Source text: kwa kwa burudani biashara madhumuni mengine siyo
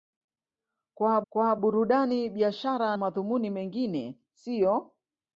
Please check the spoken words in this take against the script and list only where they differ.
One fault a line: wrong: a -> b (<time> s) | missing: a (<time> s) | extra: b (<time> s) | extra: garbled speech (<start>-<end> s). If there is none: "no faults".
no faults